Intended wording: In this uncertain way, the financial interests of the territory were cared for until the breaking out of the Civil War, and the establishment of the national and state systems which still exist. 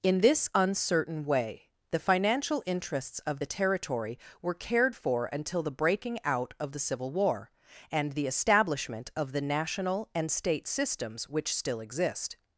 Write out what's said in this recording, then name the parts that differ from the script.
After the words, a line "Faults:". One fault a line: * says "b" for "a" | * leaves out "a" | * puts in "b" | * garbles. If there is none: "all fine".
In this uncertain way, the financial interests of the territory were cared for until the breaking out of the Civil War, and the establishment of the national and state systems which still exist.
Faults:
all fine